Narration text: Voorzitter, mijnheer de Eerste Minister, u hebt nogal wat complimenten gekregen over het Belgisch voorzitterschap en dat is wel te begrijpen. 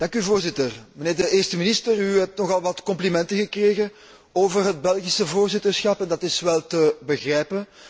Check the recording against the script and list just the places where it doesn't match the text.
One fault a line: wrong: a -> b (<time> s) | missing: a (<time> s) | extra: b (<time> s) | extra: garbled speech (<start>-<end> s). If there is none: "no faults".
no faults